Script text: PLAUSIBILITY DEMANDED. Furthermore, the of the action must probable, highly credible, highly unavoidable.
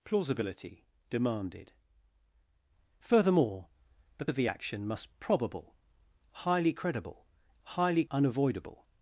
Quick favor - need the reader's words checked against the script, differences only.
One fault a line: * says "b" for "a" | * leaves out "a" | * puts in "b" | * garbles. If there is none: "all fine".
all fine